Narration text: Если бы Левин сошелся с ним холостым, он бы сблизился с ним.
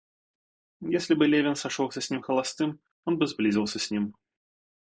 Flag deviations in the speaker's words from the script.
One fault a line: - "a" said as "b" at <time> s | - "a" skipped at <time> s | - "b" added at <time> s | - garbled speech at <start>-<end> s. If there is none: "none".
none